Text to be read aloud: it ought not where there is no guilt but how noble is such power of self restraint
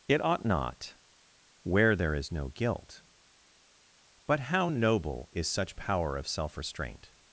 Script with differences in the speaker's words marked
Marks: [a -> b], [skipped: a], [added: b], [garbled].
it ought not where there is no guilt but how noble is such power of self restraint